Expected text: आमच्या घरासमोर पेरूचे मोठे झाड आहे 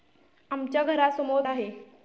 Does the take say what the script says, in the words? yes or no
no